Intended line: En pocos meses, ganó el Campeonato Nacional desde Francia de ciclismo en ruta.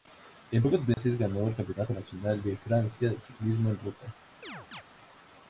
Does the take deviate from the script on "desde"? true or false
true